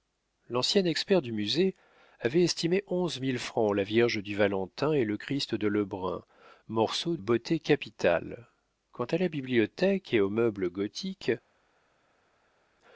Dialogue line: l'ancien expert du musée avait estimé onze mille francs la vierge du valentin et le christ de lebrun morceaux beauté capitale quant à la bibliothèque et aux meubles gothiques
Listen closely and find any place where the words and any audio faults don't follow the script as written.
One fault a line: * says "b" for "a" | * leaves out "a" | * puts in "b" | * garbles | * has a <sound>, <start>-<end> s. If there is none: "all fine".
all fine